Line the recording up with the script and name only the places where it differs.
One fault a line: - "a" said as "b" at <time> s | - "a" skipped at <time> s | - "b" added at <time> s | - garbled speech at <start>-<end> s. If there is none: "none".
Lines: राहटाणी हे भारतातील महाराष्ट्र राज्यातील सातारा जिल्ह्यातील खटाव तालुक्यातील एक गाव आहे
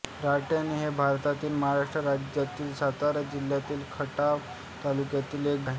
- "गाव" skipped at 5.7 s